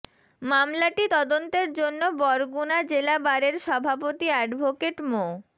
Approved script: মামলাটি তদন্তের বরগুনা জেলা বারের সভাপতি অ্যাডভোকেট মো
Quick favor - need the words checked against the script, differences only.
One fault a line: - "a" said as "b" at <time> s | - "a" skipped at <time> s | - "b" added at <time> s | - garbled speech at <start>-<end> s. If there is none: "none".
- "জন্য" added at 1.7 s